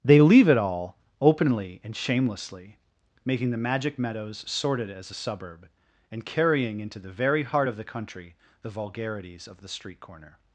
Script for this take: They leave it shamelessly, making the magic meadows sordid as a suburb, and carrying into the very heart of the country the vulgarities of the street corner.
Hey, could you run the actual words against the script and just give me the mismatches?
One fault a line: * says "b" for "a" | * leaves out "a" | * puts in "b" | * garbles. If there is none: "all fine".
* puts in "all openly and"